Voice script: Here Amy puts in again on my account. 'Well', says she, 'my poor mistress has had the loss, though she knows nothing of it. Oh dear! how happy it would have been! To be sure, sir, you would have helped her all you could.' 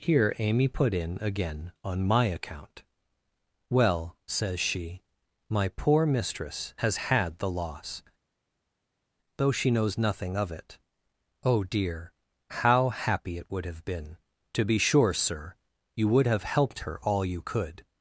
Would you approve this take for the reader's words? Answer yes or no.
no